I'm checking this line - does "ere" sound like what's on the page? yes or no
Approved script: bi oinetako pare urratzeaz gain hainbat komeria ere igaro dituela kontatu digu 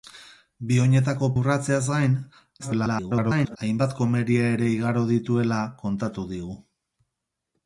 yes